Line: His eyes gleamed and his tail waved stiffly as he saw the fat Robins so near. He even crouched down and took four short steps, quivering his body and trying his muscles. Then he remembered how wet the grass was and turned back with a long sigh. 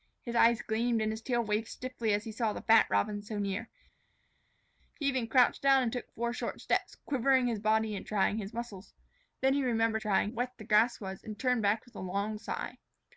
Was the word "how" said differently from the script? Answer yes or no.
yes